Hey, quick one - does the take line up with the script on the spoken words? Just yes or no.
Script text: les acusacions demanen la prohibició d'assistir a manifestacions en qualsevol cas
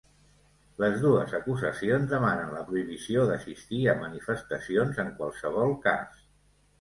no